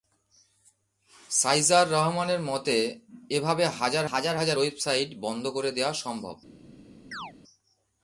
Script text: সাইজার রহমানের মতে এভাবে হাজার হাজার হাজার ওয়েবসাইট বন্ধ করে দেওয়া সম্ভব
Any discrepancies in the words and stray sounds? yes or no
yes